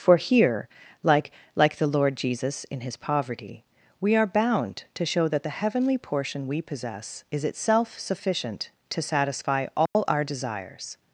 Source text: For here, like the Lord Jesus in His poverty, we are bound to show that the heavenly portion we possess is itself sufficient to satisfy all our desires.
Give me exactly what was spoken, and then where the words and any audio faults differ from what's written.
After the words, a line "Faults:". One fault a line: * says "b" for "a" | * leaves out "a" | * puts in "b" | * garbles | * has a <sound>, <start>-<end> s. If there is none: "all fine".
For here, like like the Lord Jesus in His poverty, we are bound to show that the heavenly portion we possess is itself sufficient to satisfy all our desires.
Faults:
* puts in "like"
* has a dropout, 9.9-9.9 s